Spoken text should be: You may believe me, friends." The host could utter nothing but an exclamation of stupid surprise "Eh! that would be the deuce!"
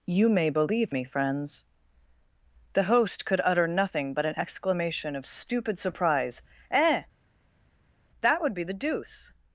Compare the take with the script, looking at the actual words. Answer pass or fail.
pass